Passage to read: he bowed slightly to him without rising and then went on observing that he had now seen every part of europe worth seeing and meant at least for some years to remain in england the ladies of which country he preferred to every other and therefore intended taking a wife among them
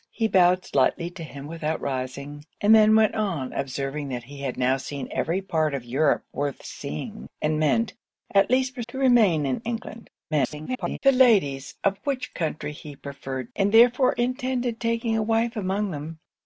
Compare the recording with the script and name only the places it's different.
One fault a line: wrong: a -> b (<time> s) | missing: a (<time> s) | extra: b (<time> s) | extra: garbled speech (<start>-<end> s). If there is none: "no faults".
missing: some years (8.8 s)
extra: garbled speech (10.3-11.0 s)
missing: to every other (13.5 s)